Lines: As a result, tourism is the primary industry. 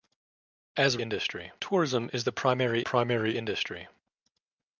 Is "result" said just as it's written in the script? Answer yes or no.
no